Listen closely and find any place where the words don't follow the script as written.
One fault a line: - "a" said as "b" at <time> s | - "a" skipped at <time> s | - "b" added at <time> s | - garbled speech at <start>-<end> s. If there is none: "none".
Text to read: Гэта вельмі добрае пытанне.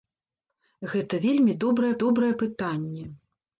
- "добрае" added at 2.0 s